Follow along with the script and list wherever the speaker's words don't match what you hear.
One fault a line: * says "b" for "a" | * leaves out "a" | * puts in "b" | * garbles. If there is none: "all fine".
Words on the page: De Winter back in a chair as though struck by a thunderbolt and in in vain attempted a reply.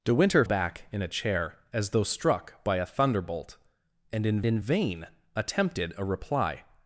all fine